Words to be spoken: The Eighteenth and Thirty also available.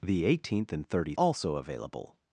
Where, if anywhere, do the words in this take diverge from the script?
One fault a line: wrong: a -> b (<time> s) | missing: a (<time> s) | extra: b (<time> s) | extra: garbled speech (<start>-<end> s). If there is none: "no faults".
no faults